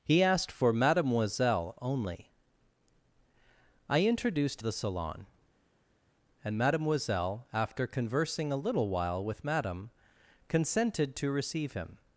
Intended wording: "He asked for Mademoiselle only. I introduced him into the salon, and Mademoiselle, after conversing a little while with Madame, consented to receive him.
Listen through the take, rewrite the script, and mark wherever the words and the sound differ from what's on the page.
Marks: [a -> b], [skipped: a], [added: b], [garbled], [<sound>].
"He asked for Mademoiselle only. I introduced [skipped: him into] the salon, and Mademoiselle, after conversing a little while with Madame, consented to receive him.